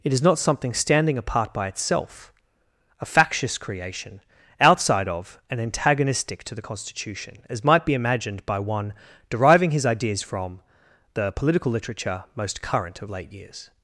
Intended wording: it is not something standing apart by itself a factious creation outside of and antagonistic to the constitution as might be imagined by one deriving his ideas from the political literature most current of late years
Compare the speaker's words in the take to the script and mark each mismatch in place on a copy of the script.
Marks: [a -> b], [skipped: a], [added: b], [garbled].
it is not something standing apart by itself a factious creation outside of and antagonistic to the constitution as might be imagined by one deriving his ideas from the political literature most current of late years